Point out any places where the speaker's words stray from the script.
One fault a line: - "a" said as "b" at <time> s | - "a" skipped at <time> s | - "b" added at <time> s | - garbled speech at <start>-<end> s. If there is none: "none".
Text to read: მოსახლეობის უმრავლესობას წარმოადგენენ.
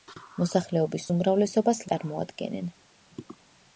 none